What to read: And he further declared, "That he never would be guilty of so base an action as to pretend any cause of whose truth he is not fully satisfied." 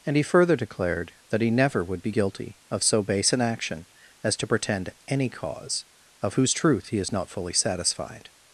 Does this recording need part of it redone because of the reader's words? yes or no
no